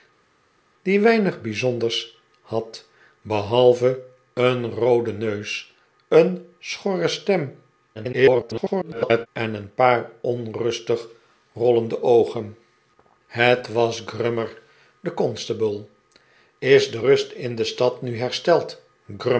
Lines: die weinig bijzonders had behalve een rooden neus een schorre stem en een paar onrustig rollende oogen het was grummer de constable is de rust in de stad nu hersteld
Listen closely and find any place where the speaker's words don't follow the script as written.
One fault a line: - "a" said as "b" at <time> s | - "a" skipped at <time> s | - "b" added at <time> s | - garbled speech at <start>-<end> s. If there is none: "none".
- garbled speech at 7.9-9.3 s